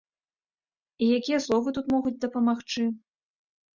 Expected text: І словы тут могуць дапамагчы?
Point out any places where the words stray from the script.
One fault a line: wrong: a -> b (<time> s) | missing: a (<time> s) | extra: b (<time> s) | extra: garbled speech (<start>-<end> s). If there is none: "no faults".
extra: якія (1.2 s)